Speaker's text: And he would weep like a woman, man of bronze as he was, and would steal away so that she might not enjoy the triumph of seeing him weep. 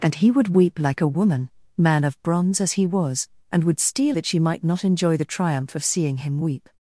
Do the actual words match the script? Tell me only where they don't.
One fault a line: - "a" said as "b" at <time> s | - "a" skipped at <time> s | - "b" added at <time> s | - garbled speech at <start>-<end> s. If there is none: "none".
- "away so" skipped at 4.2 s